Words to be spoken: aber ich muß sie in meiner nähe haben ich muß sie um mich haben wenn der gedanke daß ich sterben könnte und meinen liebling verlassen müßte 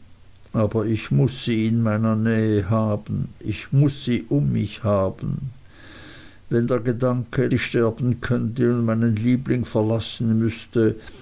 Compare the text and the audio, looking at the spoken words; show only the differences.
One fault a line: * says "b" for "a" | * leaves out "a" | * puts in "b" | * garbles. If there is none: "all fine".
* leaves out "daß"